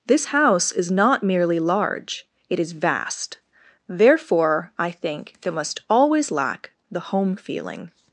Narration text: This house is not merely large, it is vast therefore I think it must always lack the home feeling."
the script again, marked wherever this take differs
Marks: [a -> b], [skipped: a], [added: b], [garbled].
This house is not merely large, it is vast therefore I think [it -> there] must always lack the home feeling."